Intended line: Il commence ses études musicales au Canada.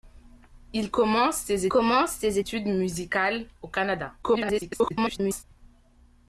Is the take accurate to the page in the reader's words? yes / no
no